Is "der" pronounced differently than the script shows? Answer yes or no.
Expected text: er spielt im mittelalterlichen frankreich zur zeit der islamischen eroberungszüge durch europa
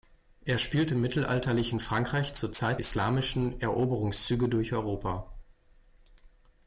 yes